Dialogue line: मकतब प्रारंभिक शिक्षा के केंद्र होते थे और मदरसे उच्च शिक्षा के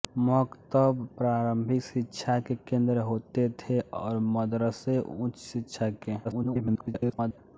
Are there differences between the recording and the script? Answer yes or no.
yes